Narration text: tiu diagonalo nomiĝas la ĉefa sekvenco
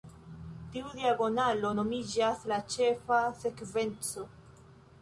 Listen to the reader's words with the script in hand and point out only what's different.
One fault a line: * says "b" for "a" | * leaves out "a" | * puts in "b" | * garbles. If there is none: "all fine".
all fine